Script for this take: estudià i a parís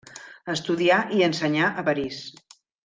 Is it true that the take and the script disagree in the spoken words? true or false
true